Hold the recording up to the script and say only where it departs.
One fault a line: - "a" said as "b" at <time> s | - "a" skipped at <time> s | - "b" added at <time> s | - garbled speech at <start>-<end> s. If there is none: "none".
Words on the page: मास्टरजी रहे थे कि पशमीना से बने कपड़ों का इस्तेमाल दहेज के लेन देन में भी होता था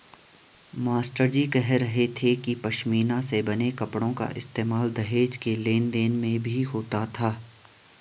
- "कह" added at 1.5 s